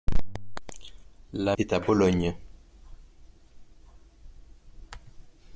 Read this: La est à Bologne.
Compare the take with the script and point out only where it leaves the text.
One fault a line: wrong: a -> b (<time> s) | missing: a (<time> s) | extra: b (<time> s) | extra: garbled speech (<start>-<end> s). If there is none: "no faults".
no faults